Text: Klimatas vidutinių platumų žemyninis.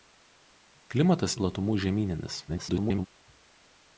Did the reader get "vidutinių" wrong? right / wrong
wrong